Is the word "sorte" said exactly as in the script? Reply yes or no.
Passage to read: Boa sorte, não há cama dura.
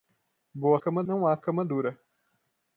no